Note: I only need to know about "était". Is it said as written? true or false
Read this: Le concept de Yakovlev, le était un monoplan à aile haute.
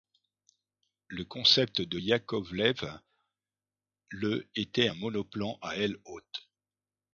true